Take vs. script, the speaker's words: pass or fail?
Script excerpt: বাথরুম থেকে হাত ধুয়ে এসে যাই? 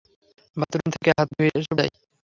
pass